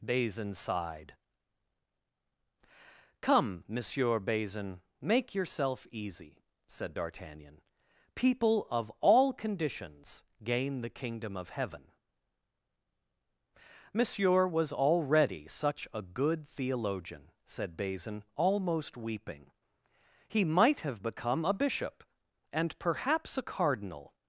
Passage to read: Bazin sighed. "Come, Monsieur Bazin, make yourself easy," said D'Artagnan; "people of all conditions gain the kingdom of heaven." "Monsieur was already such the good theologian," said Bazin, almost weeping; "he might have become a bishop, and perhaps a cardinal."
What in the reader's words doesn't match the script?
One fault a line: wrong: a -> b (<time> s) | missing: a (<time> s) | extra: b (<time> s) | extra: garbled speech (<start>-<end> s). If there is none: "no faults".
wrong: the -> a (15.9 s)